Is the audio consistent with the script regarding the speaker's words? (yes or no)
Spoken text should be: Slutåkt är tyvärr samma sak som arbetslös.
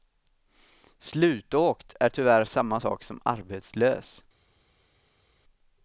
yes